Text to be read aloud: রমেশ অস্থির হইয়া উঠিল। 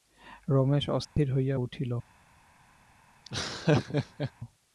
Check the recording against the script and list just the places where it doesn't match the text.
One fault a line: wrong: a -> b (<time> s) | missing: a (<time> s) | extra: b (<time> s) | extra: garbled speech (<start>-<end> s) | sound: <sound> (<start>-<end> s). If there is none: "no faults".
sound: dropout (1.0-1.2 s)
sound: laugh (3.2-4.3 s)